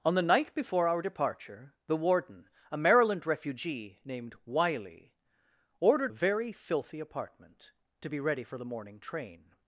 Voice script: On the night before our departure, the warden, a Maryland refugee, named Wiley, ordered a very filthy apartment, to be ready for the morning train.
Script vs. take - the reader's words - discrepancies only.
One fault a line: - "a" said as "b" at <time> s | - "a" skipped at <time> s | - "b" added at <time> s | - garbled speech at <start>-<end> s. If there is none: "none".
none